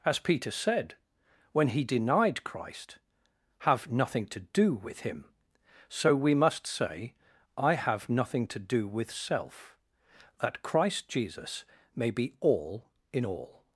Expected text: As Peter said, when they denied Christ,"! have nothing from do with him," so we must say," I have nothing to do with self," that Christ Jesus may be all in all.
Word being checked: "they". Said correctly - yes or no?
no